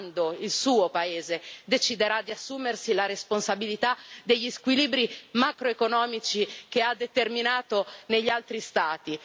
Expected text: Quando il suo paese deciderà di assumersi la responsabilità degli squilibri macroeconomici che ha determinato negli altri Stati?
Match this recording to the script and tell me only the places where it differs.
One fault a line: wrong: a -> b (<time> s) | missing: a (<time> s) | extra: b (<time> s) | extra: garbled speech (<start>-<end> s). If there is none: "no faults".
no faults